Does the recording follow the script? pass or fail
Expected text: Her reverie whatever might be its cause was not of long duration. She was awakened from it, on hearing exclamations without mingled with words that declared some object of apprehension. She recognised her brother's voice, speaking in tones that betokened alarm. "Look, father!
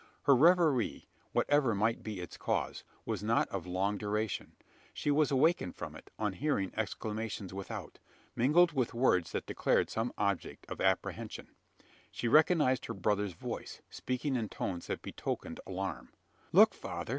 pass